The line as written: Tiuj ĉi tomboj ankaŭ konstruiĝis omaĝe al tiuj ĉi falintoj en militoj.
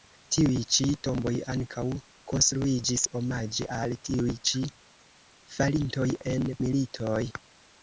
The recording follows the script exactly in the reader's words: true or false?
true